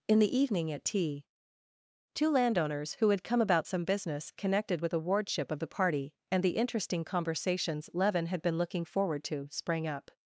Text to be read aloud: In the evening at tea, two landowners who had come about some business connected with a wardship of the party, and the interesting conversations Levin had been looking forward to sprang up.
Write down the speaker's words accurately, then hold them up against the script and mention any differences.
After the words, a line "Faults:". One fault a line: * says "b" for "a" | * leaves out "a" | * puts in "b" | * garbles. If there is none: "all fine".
In the evening at tea, two landowners who had come about some business connected with a wardship of the party, and the interesting conversations Levin had been looking forward to sprang up.
Faults:
all fine